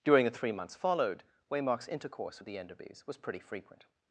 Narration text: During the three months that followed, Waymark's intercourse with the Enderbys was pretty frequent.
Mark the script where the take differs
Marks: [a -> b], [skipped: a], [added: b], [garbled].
During the three months [skipped: that] followed, Waymark's intercourse with the Enderbys was pretty frequent.